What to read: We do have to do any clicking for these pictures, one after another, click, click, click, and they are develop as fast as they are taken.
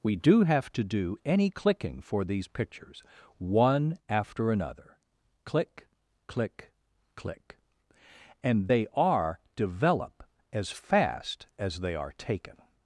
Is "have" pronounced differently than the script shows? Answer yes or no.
no